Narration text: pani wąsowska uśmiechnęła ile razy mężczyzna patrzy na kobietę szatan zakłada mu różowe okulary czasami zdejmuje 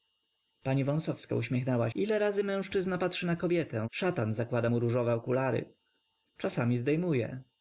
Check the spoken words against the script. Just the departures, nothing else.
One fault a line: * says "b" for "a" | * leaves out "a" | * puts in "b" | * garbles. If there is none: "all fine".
all fine